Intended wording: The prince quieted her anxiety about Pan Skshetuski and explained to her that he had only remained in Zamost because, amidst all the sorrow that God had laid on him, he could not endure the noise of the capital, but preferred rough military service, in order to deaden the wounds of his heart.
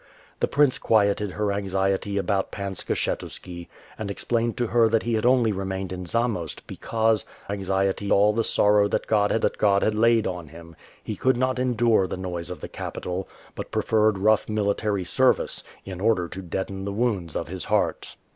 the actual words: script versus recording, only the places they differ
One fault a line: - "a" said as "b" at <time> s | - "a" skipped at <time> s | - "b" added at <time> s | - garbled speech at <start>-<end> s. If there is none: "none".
- "amidst" said as "anxiety" at 7.5 s
- "that God had" added at 9.4 s